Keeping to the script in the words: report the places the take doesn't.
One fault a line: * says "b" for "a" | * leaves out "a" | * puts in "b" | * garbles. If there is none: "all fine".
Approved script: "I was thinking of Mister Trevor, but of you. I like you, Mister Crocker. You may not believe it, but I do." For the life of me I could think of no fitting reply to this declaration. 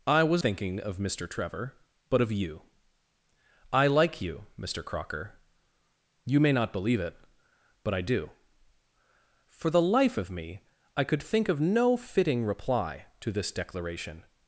all fine